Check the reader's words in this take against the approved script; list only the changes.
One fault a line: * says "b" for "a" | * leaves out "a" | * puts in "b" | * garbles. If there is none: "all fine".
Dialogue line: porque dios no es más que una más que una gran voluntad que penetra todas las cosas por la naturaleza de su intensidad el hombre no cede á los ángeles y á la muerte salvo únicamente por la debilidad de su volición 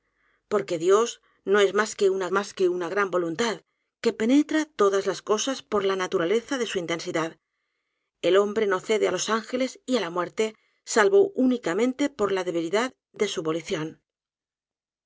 all fine